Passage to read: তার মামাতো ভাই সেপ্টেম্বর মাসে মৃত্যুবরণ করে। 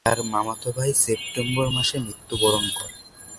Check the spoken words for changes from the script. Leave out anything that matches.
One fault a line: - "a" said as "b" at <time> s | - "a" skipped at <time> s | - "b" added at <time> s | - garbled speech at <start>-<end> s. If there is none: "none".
none